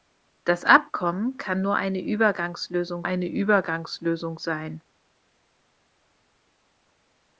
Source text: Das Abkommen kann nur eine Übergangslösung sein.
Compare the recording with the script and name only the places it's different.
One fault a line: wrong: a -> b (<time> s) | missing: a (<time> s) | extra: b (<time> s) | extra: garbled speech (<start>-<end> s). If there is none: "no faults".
extra: eine Übergangslösung (3.0 s)